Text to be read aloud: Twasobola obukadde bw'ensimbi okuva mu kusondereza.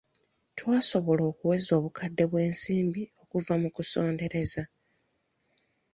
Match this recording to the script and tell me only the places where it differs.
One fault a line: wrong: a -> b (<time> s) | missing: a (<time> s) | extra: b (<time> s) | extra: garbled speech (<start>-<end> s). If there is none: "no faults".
extra: okuweza (1.3 s)